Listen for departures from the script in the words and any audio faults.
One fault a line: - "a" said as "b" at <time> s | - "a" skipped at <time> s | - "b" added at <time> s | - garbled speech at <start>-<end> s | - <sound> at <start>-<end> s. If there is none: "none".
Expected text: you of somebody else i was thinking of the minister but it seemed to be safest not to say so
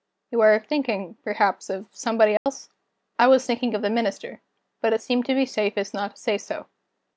- "are thinking perhaps" added at 0.4 s
- dropout at 2.4-2.5 s